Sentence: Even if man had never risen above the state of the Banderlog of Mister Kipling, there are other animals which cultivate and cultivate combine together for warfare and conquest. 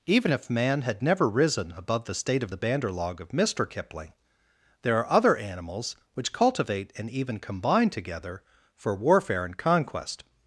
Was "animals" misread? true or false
false